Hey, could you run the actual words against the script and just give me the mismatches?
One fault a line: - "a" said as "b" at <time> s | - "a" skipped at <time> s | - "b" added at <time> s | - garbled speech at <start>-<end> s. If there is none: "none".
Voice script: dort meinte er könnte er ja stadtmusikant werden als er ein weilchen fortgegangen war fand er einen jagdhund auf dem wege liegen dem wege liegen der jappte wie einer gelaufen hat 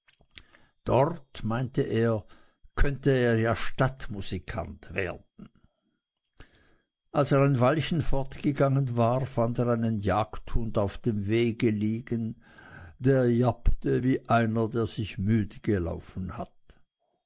- "dem wege liegen" skipped at 12.4 s
- "der sich müde" added at 14.7 s